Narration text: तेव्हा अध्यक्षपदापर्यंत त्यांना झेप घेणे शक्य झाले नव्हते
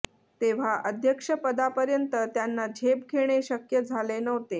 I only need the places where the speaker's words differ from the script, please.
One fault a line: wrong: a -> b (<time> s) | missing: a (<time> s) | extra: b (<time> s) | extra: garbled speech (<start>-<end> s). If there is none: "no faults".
no faults